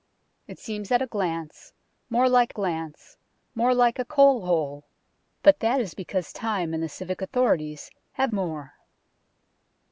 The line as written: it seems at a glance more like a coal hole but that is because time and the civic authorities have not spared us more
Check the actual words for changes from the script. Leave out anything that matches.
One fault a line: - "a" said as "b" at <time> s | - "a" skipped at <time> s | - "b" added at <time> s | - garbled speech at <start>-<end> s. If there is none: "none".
- "glance more like" added at 2.5 s
- "not spared us" skipped at 8.3 s